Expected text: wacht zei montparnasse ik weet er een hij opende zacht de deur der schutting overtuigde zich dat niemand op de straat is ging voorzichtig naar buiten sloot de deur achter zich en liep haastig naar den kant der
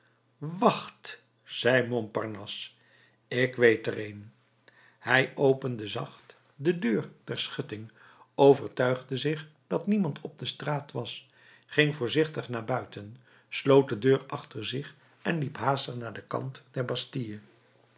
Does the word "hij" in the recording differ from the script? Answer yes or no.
no